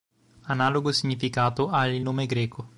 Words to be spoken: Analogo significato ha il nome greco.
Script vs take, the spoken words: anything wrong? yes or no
no